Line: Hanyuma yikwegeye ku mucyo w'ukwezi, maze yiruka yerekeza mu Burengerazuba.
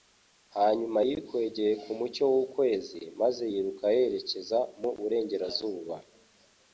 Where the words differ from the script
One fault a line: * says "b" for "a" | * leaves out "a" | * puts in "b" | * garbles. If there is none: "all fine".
all fine